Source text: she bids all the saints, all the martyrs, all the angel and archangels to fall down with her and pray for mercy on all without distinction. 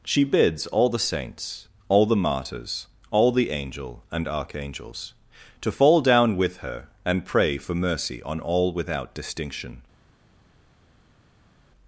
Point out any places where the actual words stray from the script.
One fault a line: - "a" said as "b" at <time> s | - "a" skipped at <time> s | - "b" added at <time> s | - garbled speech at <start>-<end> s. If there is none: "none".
none